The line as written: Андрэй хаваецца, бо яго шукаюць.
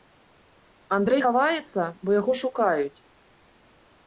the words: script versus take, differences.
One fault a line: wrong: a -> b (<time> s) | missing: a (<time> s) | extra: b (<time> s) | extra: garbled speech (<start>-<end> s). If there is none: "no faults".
no faults